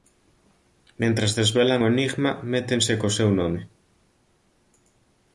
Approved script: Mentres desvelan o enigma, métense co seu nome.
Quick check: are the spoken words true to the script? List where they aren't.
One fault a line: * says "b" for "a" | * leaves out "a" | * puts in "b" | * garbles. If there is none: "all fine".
all fine